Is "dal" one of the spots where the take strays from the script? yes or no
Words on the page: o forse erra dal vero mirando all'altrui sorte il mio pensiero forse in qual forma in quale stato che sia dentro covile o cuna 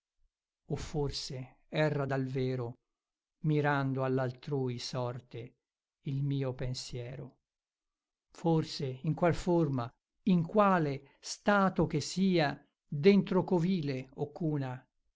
no